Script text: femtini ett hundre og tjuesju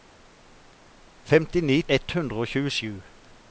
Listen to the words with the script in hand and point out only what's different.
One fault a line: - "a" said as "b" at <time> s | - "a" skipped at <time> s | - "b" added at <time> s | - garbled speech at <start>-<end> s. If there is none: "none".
none